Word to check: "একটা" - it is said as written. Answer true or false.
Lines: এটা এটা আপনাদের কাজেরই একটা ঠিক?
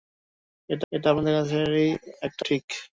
true